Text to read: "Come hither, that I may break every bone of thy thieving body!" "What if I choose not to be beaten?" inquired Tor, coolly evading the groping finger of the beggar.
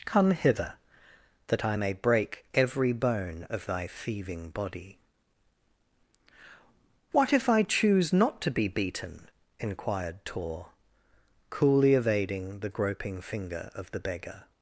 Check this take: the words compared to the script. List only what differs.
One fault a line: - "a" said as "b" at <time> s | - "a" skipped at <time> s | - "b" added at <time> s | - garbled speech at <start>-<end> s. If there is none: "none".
none